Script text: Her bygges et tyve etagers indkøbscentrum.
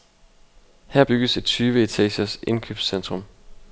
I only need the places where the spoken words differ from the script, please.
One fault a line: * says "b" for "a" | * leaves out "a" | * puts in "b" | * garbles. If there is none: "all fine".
all fine